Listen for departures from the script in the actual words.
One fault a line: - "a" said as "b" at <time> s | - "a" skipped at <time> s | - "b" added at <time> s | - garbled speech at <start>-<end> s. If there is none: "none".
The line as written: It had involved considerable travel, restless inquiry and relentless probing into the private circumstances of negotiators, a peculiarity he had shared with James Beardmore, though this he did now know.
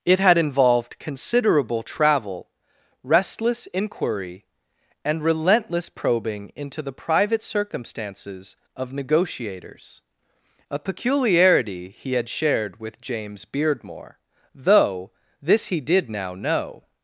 none